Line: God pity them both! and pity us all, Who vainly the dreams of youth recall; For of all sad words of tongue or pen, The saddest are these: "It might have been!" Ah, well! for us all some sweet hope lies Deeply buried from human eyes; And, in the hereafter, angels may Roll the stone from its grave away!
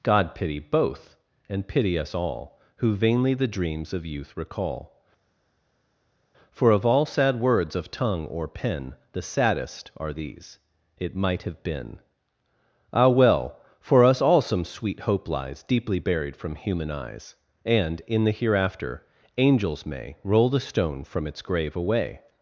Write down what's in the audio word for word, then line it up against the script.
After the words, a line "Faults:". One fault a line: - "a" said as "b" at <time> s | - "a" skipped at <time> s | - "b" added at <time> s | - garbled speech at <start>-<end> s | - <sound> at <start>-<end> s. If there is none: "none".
God pity both! and pity us all, Who vainly the dreams of youth recall; For of all sad words of tongue or pen, The saddest are these: "It might have been!" Ah, well! for us all some sweet hope lies Deeply buried from human eyes; And, in the hereafter, angels may Roll the stone from its grave away!
Faults:
- "them" skipped at 0.6 s